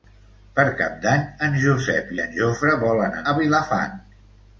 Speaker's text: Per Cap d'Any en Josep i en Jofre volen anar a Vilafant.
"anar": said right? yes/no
no